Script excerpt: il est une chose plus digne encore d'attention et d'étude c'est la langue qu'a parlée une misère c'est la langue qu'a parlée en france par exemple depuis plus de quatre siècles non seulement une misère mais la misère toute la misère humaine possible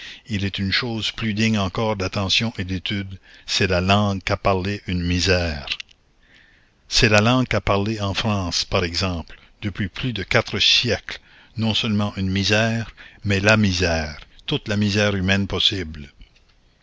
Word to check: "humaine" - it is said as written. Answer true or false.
true